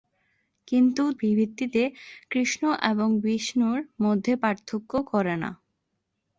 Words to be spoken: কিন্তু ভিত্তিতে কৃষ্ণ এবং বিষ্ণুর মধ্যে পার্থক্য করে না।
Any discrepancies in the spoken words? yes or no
no